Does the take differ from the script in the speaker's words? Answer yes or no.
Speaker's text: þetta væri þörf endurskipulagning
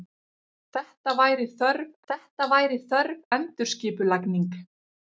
yes